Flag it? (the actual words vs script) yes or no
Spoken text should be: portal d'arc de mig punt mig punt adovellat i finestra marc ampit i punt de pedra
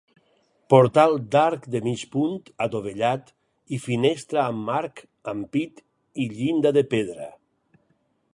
yes